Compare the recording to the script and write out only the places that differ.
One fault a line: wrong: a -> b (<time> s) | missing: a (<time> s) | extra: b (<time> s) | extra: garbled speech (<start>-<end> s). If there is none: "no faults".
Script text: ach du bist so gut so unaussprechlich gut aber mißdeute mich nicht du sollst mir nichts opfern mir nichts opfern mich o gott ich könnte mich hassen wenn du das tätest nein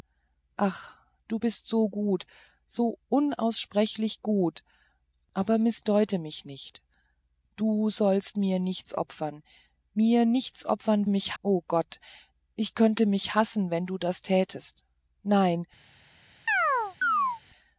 no faults